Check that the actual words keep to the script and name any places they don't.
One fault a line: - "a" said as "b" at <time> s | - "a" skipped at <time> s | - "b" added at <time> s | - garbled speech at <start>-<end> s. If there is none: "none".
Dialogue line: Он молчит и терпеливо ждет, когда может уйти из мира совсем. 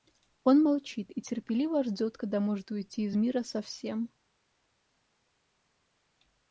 none